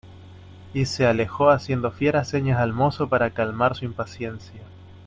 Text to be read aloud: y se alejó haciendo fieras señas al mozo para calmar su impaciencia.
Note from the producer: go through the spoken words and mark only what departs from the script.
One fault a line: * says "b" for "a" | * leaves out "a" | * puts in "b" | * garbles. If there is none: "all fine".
all fine